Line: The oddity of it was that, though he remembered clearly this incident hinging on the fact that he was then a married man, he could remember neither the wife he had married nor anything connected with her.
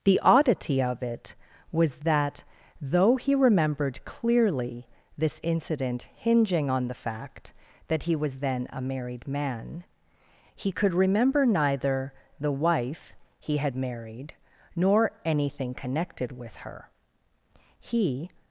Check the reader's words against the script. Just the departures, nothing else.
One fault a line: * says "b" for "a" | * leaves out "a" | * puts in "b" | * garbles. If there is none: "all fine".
* puts in "He"